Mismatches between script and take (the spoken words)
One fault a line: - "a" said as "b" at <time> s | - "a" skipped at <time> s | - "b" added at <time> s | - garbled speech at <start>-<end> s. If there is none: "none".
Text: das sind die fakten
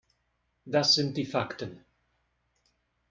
none